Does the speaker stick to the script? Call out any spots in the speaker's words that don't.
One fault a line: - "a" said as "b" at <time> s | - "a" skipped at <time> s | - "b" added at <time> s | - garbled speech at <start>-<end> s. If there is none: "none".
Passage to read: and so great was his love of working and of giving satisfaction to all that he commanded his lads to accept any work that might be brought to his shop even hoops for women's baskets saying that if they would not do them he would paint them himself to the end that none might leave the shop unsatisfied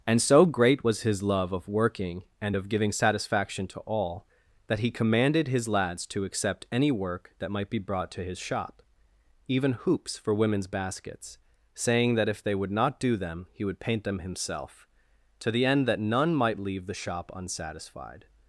none